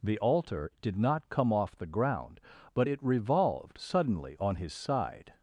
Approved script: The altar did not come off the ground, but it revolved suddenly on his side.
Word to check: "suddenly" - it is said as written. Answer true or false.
true